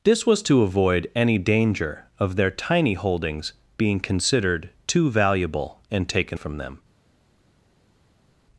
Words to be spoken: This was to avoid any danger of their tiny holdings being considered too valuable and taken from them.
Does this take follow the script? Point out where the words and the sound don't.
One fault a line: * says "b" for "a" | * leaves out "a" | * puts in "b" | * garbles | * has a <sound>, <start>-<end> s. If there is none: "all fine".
all fine